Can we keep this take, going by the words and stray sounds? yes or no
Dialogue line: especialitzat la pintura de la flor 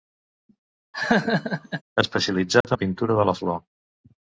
no